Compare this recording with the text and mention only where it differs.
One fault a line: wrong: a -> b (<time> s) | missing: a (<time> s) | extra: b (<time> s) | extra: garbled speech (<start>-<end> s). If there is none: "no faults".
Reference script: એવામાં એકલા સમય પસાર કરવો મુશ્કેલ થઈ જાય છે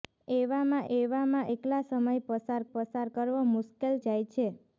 extra: એવામાં (1.0 s)
extra: પસાર (2.7 s)
missing: થઈ (4.0 s)